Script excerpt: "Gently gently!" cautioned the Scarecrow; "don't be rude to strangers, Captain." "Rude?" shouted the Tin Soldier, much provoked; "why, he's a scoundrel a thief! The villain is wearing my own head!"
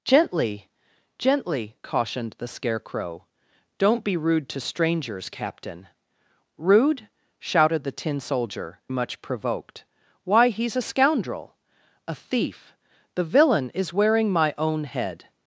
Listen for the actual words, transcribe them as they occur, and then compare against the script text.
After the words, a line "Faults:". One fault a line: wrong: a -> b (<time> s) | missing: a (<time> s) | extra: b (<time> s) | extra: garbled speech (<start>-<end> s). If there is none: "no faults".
"Gently gently!" cautioned the Scarecrow; "don't be rude to strangers, Captain." "Rude?" shouted the Tin Soldier, much provoked; "why, he's a scoundrel a thief! The villain is wearing my own head!"
Faults:
no faults